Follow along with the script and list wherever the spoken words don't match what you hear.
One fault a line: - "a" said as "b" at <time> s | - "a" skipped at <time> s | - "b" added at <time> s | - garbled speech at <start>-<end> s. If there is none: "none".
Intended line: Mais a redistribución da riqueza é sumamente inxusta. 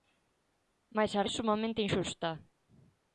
- "redistribución da riqueza" skipped at 1.3 s